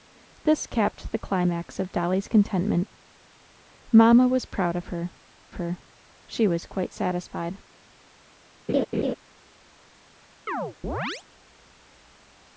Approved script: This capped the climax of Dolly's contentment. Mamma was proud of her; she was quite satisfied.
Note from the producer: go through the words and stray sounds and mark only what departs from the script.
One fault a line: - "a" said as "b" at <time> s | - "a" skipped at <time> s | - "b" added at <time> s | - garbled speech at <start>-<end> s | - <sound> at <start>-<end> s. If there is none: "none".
- "her" added at 5.5 s
- laugh at 8.7-9.1 s
- chirp at 10.5-11.2 s